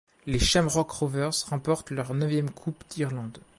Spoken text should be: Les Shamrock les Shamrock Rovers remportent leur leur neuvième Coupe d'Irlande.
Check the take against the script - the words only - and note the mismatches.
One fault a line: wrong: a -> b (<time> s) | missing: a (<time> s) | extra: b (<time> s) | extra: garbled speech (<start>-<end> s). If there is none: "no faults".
missing: les Shamrock (0.9 s)
missing: leur (2.1 s)